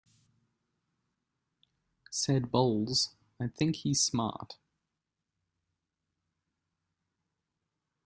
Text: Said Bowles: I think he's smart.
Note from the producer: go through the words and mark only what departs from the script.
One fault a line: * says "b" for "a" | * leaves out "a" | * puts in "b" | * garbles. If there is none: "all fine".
all fine